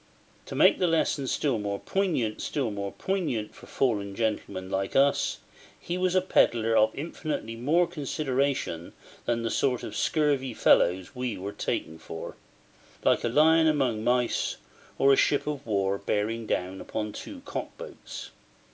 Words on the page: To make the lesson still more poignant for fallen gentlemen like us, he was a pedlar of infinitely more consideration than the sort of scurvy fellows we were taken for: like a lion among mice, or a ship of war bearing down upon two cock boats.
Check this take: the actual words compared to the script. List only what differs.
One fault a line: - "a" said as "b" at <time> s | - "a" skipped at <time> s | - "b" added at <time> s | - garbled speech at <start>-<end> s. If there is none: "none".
- "still more poignant" added at 2.4 s